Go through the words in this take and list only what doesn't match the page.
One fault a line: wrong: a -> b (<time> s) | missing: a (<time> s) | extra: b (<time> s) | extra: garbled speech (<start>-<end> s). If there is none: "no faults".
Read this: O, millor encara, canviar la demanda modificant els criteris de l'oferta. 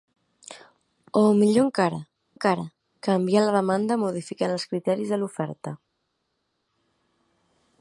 extra: encara (2.3 s)